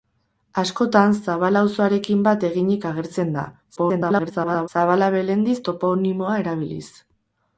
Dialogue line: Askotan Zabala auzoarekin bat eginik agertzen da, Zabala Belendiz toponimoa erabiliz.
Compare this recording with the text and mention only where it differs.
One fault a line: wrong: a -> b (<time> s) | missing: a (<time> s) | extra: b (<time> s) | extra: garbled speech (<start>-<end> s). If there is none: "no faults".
extra: garbled speech (3.8-4.7 s)